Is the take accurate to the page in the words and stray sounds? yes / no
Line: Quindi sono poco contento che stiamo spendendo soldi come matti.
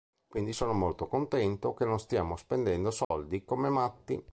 no